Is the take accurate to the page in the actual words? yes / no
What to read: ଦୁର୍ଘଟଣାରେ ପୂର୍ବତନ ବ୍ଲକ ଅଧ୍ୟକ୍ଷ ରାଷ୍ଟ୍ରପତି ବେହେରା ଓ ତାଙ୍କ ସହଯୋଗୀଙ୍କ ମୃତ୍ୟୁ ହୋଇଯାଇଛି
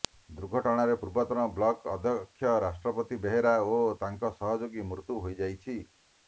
yes